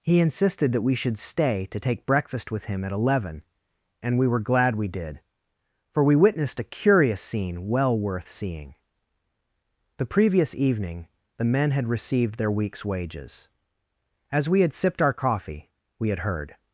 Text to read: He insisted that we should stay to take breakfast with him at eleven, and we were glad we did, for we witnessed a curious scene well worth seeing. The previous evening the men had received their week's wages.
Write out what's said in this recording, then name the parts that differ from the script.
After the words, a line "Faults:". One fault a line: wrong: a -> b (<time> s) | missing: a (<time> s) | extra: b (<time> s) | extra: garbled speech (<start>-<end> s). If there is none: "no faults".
He insisted that we should stay to take breakfast with him at eleven, and we were glad we did, for we witnessed a curious scene well worth seeing. The previous evening the men had received their week's wages. As we had sipped our coffee we had heard
Faults:
extra: As we had sipped our coffee we had heard (14.3 s)